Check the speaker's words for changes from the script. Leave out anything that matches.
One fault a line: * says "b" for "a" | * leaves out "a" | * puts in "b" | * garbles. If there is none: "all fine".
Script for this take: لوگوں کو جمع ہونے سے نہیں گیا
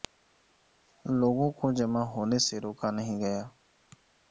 * puts in "روکا"